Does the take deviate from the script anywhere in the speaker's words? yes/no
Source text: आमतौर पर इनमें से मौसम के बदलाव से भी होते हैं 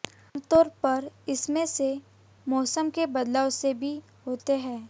no